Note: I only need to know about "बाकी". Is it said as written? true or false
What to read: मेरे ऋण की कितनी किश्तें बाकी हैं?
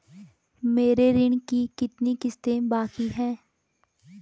true